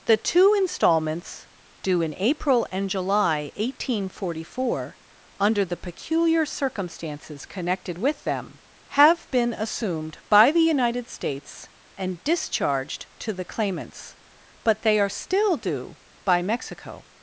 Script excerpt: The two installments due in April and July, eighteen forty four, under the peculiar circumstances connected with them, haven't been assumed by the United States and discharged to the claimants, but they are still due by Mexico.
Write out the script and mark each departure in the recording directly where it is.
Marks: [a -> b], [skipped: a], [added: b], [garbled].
The two installments due in April and July, eighteen forty four, under the peculiar circumstances connected with them, [haven't -> have] been assumed by the United States and discharged to the claimants, but they are still due by Mexico.